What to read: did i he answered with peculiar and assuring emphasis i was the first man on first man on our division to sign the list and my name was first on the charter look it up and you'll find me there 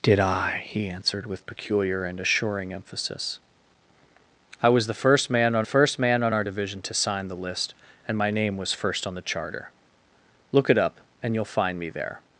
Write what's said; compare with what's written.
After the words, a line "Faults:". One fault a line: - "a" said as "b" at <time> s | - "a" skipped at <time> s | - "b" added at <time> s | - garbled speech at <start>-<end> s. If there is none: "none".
did i he answered with peculiar and assuring emphasis i was the first man on first man on our division to sign the list and my name was first on the charter look it up and you'll find me there
Faults:
none